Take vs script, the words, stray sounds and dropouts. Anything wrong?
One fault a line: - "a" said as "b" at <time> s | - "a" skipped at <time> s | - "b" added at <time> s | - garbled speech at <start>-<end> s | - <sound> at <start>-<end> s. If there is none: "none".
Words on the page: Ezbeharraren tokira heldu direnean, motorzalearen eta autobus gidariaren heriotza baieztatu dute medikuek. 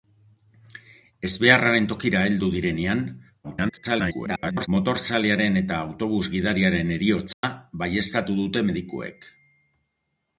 - garbled speech at 3.4-4.7 s
- dropout at 7.3-7.4 s